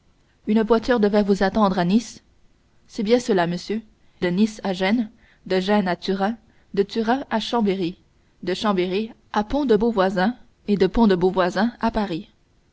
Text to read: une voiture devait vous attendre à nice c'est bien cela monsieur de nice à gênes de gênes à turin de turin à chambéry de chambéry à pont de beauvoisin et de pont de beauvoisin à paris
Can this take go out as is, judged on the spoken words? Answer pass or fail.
pass